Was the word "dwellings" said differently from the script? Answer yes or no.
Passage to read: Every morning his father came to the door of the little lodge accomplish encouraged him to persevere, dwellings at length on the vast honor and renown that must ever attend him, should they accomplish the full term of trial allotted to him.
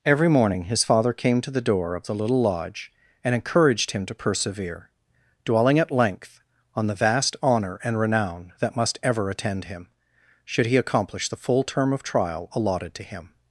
yes